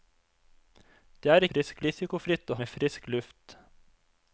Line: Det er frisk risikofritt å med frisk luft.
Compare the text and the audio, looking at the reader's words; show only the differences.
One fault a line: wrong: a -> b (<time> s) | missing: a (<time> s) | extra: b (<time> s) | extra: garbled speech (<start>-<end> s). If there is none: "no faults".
no faults